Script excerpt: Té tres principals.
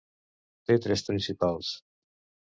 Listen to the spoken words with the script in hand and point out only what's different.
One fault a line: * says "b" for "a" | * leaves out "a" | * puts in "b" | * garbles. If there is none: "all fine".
all fine